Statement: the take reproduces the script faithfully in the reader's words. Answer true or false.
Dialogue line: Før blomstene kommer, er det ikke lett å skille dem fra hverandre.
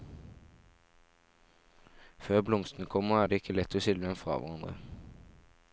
true